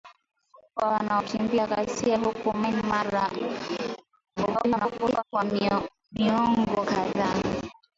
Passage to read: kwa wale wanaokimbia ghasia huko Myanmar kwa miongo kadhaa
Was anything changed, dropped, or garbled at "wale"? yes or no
yes